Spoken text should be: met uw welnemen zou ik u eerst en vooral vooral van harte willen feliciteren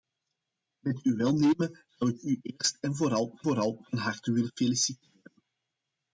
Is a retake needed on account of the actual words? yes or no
no